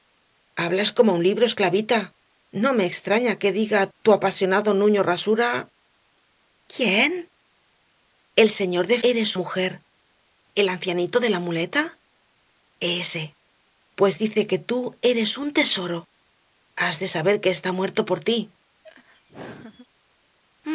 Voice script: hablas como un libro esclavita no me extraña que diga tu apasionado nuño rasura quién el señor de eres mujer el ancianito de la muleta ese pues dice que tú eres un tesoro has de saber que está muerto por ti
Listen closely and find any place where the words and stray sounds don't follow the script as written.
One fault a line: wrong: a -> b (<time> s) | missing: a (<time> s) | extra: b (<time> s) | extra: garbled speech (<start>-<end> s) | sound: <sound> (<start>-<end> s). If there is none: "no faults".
sound: laugh (18.8-19.9 s)